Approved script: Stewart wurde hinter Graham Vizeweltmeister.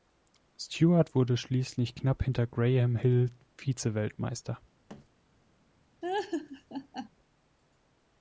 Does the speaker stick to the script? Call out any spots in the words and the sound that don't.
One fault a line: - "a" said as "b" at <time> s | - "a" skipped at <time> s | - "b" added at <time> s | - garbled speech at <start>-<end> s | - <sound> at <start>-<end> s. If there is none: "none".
- "schließlich knapp" added at 1.4 s
- "Hill" added at 3.0 s
- thud at 4.9-5.1 s
- laugh at 6.0-7.1 s